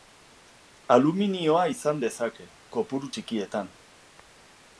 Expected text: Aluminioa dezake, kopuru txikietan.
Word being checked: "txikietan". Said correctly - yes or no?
yes